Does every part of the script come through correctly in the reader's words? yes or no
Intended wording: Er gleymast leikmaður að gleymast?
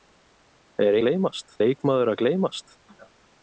yes